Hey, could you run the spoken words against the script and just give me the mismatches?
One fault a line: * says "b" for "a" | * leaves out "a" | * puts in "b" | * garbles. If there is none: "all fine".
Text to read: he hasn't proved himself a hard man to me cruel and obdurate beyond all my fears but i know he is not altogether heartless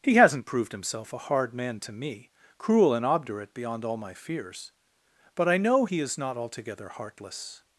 all fine